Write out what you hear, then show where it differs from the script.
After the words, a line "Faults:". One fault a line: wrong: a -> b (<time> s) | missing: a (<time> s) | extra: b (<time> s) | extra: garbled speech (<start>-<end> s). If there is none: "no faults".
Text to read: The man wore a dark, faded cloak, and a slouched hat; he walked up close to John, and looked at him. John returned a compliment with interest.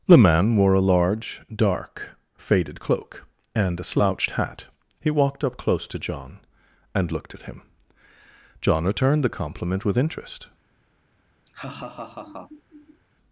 The man wore a large, dark, faded cloak, and a slouched hat; he walked up close to John, and looked at him. John returned the compliment with interest.
Faults:
extra: large (0.8 s)
wrong: a -> the (9.2 s)